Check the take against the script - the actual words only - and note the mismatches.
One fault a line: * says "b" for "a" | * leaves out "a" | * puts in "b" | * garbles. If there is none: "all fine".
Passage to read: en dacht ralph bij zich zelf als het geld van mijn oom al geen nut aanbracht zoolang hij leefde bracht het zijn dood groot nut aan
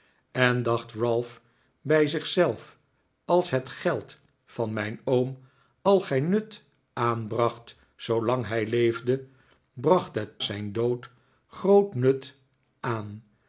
all fine